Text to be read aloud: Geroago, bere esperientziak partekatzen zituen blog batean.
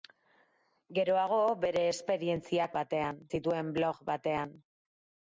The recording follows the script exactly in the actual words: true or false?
false